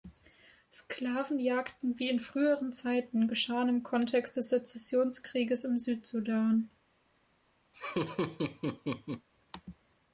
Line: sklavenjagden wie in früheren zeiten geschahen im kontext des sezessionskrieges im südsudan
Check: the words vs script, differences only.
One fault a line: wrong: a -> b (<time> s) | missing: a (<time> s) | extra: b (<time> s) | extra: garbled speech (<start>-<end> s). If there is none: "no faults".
no faults